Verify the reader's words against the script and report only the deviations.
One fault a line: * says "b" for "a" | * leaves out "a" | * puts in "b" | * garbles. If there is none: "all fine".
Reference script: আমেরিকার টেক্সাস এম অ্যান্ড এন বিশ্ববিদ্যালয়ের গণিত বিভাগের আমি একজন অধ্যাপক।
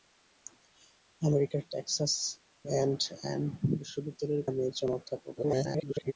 * leaves out "এম"
* leaves out "গণিত বিভাগের"
* garbles